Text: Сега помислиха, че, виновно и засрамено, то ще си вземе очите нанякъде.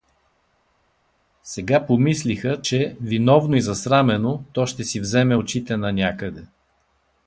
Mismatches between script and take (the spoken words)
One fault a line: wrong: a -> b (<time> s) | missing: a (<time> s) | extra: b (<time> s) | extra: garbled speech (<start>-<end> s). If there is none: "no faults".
no faults